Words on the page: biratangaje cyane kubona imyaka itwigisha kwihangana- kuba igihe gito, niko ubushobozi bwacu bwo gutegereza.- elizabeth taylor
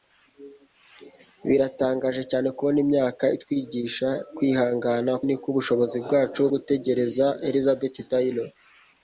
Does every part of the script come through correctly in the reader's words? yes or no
no